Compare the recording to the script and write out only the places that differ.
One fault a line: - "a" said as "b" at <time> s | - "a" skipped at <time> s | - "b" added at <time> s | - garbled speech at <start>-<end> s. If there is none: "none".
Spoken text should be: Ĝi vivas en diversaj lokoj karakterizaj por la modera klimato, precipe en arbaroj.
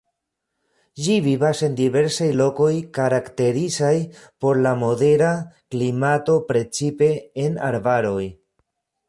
none